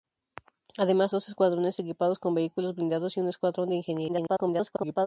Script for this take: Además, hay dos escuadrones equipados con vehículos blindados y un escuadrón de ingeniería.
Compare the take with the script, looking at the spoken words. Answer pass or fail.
fail